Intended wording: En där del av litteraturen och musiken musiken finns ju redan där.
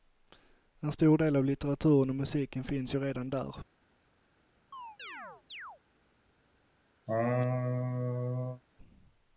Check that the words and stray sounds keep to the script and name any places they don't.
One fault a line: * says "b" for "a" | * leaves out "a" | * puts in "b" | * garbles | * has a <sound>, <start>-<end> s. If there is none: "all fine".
* says "stor" for "där"
* leaves out "musiken"
* has a chirp, 4.7-5.8 s
* has a laugh, 7.1-8.6 s